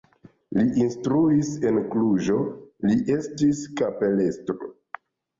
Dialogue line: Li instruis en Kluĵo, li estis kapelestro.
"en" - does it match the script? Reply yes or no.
yes